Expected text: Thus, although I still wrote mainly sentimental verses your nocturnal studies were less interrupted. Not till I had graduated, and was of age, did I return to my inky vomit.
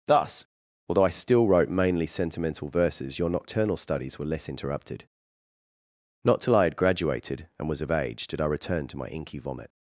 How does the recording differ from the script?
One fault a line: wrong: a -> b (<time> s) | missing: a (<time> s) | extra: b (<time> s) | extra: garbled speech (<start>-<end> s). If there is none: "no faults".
no faults